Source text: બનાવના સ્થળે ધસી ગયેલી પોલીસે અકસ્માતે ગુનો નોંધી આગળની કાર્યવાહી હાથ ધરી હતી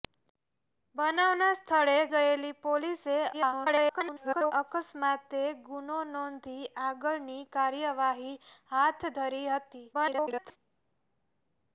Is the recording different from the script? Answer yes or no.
yes